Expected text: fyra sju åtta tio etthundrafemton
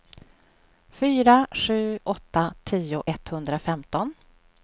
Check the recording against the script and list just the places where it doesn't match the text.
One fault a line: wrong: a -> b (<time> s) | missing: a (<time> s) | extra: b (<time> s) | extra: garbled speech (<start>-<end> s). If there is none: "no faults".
no faults